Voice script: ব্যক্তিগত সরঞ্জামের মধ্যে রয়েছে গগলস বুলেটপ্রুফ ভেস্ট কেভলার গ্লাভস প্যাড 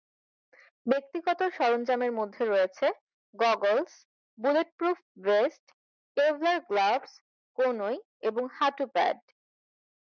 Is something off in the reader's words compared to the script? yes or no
yes